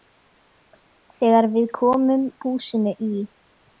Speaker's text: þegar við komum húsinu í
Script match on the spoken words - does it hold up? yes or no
yes